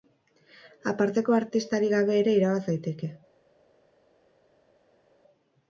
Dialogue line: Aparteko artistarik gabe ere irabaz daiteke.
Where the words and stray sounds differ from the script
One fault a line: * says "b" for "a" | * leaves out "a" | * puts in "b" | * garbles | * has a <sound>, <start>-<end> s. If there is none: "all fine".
all fine